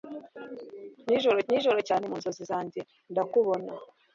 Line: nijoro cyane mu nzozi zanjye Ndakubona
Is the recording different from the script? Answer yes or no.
yes